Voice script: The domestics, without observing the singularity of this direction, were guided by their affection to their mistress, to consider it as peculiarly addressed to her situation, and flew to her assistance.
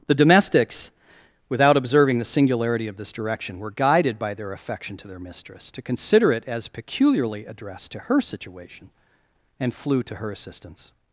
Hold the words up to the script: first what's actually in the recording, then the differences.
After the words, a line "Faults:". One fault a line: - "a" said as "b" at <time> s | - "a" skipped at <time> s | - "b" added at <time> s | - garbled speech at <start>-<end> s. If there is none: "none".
The domestics, without observing the singularity of this direction, were guided by their affection to their mistress, to consider it as peculiarly addressed to her situation, and flew to her assistance.
Faults:
none